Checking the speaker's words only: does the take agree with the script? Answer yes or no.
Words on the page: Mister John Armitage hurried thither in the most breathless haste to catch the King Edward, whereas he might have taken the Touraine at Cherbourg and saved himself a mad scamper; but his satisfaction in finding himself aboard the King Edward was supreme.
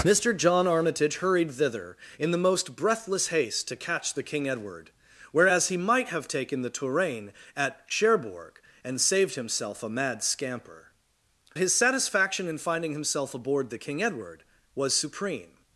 no